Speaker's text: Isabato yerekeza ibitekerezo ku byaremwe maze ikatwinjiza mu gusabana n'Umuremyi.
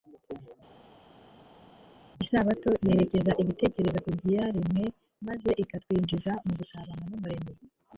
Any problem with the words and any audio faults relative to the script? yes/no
no